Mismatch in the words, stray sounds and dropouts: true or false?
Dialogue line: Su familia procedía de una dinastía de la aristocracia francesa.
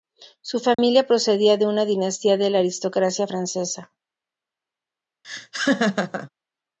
true